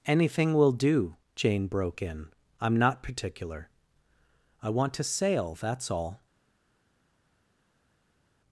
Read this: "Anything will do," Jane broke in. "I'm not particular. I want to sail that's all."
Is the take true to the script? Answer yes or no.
yes